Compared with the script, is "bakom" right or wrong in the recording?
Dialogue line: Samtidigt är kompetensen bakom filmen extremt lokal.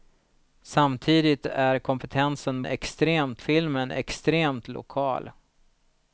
wrong